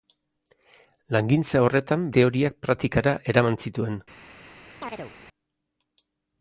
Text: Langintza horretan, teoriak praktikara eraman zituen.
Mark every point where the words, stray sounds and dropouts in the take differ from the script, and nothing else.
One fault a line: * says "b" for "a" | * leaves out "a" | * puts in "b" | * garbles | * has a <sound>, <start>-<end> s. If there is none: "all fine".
* has a chirp, 4.8-5.1 s